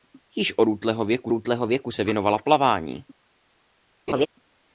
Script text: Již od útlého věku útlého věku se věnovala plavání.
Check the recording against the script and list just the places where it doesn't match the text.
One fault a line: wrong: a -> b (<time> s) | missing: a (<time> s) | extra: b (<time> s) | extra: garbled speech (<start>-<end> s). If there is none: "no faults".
no faults